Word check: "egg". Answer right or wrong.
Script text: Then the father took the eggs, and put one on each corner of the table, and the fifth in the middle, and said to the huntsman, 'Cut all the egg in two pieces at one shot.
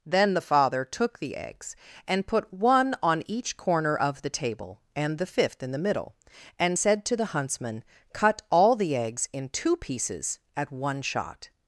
wrong